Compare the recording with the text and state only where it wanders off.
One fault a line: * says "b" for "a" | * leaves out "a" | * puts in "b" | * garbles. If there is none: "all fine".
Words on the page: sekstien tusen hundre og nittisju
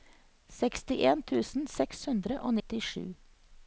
* puts in "seks"